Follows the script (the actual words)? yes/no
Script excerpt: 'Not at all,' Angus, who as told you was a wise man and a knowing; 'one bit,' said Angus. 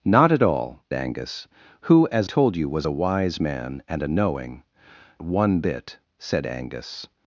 yes